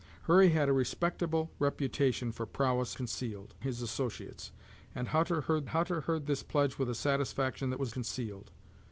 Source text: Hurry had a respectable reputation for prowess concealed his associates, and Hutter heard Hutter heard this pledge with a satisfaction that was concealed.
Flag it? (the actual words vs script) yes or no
no